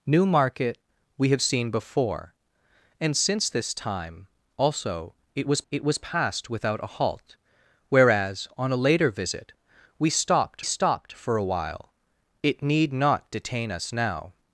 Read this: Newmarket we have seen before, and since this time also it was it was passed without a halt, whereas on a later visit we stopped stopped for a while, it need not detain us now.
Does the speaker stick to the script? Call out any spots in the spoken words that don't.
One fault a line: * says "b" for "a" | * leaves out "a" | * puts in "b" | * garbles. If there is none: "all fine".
all fine